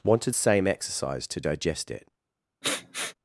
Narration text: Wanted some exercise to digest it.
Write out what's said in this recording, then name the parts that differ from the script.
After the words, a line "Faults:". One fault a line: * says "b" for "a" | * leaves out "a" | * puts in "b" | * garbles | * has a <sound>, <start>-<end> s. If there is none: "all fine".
Wanted same exercise to digest it.
Faults:
* says "same" for "some"
* has a sniff, 2.6-3.1 s